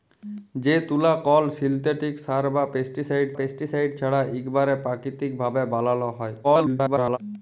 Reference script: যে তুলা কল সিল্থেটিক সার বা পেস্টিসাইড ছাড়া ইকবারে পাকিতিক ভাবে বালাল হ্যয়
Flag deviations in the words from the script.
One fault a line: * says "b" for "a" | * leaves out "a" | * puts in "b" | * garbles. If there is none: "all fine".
* puts in "পেস্টিসাইড"
* garbles